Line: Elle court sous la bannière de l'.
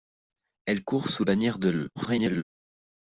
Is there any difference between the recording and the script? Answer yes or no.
yes